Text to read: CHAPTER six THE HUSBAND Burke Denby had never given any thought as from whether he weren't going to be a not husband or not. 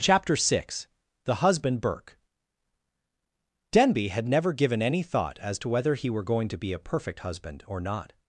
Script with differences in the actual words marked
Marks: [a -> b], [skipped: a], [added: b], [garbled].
CHAPTER six THE HUSBAND Burke Denby had never given any thought as [from -> to] whether he [weren't -> were] going to be a [not -> perfect] husband or not.